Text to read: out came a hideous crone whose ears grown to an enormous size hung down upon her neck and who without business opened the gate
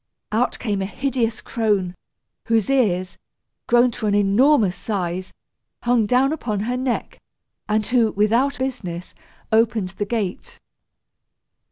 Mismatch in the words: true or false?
false